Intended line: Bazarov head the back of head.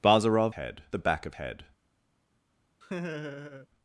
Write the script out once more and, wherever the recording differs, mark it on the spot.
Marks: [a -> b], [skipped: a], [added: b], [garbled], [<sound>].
Bazarov head the back of head. [laugh]